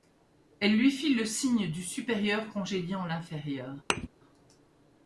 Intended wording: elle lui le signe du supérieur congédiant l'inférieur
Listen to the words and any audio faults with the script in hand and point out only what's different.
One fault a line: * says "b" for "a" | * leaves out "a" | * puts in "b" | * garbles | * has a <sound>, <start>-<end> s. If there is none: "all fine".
* puts in "fit"
* has a thud, 3.9-4.1 s